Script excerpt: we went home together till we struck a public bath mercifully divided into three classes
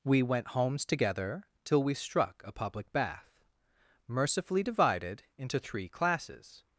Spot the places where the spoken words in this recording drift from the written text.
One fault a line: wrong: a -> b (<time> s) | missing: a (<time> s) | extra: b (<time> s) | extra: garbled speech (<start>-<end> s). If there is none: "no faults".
wrong: home -> homes (0.5 s)